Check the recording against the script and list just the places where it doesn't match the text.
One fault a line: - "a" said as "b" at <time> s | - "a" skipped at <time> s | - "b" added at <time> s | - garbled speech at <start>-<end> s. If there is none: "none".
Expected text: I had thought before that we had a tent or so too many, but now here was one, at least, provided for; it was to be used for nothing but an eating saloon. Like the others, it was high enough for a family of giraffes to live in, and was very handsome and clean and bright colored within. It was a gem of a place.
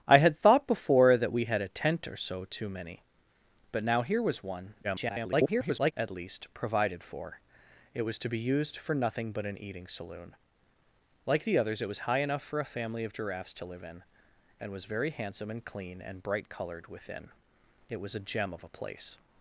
- garbled speech at 4.8-5.9 s